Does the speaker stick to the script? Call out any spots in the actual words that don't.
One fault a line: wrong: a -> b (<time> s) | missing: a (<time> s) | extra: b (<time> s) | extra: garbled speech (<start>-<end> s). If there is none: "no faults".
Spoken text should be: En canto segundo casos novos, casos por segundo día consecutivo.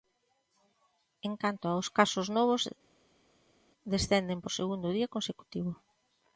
wrong: segundo -> aos (1.7 s)
wrong: casos -> descenden (3.9 s)